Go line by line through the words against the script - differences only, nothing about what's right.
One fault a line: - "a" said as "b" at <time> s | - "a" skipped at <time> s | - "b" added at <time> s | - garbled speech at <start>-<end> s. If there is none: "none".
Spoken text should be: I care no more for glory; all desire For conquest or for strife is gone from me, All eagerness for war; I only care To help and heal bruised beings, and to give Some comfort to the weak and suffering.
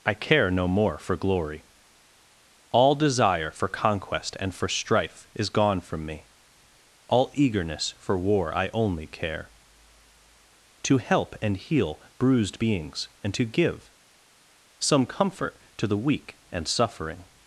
- "or" said as "and" at 4.4 s